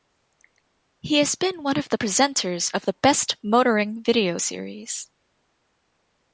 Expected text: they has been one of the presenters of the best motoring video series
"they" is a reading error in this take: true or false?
true